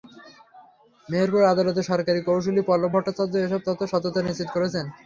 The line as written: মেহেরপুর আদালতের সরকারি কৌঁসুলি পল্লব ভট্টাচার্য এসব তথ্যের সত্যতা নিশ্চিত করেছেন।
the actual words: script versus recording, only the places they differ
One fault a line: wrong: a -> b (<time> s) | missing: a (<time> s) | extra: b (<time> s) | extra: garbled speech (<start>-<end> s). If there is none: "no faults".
no faults